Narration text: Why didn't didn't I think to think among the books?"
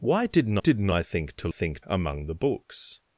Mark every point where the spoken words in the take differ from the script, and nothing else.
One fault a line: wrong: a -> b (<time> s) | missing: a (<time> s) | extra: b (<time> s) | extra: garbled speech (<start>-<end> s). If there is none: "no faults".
no faults